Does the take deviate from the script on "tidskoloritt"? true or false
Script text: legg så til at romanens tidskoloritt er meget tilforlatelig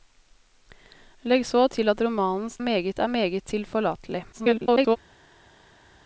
true